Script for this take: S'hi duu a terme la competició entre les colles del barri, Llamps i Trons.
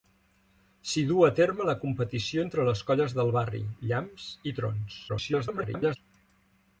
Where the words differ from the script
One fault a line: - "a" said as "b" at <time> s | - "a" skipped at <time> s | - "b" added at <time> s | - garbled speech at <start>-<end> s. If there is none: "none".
- garbled speech at 5.1-6.0 s